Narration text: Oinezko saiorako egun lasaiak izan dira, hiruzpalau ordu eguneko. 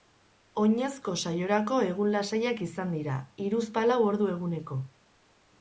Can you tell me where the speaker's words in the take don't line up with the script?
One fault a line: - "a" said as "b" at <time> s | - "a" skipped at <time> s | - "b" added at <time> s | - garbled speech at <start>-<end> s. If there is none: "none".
none